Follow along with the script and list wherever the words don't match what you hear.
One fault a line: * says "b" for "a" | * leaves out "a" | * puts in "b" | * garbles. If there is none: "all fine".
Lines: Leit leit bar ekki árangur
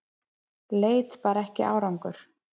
* leaves out "leit"